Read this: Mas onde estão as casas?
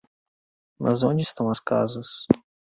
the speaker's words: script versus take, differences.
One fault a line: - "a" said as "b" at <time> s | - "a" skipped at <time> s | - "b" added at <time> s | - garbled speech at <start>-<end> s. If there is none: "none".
none